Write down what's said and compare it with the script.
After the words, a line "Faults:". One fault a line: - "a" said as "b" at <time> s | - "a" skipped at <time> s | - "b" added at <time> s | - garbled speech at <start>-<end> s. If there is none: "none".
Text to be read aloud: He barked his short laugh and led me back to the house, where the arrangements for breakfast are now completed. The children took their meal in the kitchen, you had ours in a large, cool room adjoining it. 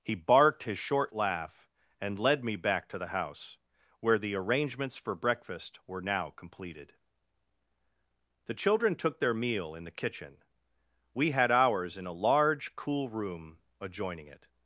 He barked his short laugh and led me back to the house, where the arrangements for breakfast were now completed. The children took their meal in the kitchen, we had ours in a large, cool room adjoining it.
Faults:
- "are" said as "were" at 5.8 s
- "you" said as "we" at 11.1 s